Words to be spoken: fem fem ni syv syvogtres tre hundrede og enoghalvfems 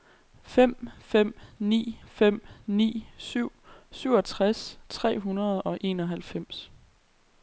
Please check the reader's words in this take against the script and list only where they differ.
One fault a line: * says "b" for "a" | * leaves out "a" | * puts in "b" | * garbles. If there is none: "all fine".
* puts in "fem ni"